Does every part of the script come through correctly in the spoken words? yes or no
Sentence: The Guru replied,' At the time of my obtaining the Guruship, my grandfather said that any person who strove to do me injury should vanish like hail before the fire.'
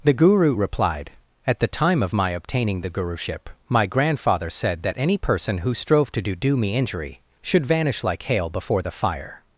no